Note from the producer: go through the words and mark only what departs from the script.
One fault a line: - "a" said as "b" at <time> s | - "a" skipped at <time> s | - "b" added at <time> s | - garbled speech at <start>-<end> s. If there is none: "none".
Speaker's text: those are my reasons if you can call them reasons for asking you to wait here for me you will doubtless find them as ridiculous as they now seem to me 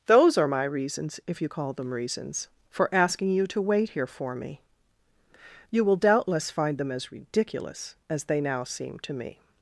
- "can" skipped at 1.5 s